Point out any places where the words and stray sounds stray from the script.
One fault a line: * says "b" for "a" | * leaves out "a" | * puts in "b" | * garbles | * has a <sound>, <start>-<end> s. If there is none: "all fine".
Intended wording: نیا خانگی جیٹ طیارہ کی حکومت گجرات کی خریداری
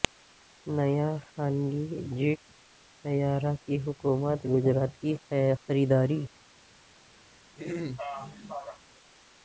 * has a throat clearing, 7.6-8.8 s